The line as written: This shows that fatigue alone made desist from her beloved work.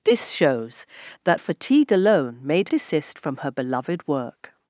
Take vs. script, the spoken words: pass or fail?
pass